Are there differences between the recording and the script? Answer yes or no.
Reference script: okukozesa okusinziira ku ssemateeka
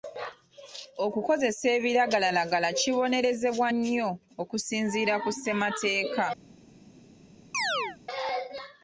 yes